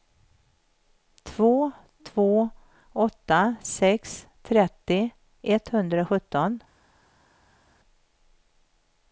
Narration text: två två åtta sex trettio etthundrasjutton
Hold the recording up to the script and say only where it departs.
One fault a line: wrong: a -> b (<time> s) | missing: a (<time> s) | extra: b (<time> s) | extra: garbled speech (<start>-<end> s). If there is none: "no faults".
no faults